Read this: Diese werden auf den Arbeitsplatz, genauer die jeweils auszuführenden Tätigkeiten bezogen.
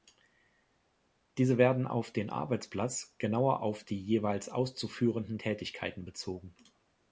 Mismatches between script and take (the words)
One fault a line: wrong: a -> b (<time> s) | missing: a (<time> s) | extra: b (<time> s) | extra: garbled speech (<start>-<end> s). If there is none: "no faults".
extra: auf (3.6 s)